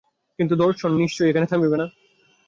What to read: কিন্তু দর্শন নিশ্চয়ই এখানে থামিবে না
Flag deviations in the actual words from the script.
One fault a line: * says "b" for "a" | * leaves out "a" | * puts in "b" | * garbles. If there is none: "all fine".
all fine